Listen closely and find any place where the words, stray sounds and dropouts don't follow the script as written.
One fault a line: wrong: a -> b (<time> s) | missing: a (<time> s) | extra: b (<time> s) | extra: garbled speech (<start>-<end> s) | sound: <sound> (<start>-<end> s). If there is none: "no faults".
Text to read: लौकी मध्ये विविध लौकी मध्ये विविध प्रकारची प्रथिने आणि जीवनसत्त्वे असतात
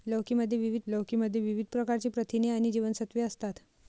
no faults